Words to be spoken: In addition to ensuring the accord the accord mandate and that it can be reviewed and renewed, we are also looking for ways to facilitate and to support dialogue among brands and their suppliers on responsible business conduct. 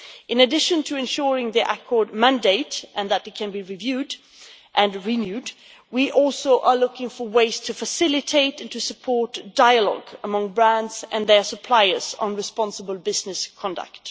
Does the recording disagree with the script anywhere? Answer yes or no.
yes